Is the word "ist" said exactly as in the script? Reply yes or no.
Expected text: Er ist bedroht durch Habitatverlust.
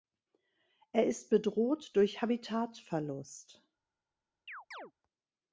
yes